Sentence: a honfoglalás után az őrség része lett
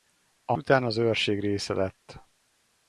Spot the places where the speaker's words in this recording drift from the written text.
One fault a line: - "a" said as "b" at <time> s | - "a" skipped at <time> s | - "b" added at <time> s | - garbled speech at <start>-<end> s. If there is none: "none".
- "honfoglalás" skipped at 0.5 s